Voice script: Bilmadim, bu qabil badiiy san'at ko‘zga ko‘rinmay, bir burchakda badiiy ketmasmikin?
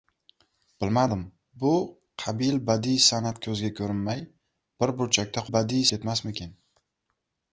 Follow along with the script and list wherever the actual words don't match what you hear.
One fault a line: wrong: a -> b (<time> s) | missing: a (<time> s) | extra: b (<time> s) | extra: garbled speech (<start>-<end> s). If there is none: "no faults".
no faults